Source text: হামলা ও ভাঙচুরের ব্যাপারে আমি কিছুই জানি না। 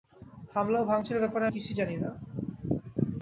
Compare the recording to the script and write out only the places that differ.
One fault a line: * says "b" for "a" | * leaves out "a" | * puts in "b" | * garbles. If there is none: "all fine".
* leaves out "আমি"